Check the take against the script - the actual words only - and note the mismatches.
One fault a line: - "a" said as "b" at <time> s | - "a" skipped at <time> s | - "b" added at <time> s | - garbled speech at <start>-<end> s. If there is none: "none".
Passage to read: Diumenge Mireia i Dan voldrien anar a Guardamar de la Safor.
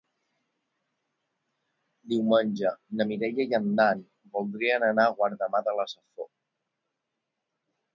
- "na" added at 3.0 s
- "en" added at 3.6 s